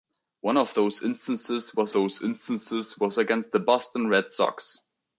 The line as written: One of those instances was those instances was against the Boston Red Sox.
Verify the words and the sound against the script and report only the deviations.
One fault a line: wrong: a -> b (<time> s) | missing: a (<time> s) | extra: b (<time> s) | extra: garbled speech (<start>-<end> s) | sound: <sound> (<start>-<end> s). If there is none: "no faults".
no faults